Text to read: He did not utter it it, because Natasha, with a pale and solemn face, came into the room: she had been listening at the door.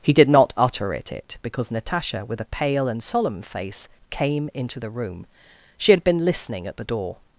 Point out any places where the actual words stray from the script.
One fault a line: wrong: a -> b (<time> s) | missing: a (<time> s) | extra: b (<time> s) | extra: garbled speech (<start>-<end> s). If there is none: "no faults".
no faults